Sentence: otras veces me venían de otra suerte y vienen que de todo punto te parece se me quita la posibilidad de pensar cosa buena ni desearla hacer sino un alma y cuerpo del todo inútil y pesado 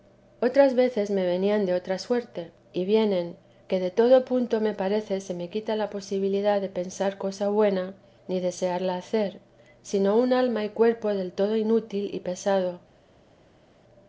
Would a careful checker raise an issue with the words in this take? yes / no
yes